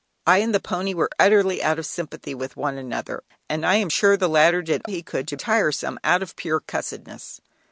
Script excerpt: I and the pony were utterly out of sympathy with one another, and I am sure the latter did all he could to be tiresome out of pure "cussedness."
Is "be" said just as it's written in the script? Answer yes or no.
no